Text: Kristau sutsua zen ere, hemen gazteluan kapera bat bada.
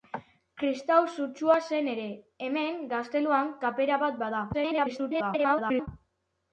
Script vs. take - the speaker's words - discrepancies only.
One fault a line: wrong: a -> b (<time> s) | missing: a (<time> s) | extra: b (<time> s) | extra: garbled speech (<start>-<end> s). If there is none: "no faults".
extra: garbled speech (4.5-5.9 s)